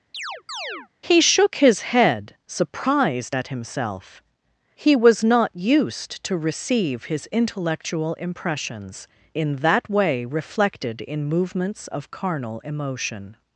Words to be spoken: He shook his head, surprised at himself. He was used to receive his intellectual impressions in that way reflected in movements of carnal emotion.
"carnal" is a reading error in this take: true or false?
false